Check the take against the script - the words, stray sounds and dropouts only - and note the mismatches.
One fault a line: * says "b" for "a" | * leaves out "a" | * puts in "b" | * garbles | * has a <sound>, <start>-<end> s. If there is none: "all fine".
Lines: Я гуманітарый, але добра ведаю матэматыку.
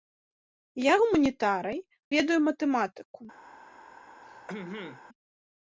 * leaves out "але добра"
* has a throat clearing, 4.2-5.0 s